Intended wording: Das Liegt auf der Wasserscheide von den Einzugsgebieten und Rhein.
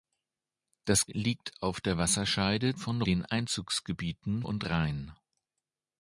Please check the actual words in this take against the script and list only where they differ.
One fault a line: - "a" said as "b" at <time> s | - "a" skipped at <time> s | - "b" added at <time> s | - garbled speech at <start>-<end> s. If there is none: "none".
none